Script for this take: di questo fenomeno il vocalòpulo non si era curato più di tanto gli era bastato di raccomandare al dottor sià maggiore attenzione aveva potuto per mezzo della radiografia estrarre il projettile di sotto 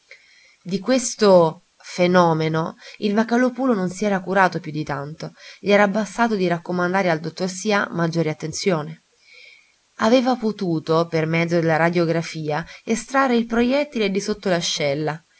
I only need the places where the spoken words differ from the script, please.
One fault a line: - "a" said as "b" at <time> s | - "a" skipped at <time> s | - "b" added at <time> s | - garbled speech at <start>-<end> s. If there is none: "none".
none